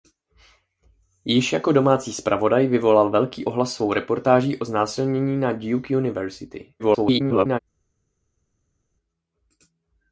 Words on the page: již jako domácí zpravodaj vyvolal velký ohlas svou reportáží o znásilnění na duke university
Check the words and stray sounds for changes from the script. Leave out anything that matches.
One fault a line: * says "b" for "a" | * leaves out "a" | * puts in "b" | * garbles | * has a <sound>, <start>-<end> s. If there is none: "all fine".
* garbles